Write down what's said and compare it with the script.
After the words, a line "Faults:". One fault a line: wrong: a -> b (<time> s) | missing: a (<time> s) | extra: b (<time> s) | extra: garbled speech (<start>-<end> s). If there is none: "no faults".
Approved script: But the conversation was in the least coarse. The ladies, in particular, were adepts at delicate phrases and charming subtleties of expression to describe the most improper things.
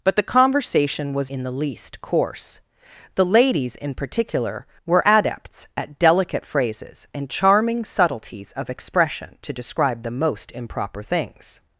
But the conversation was in the least coarse. The ladies, in particular, were adepts at delicate phrases and charming subtleties of expression to describe the most improper things.
Faults:
no faults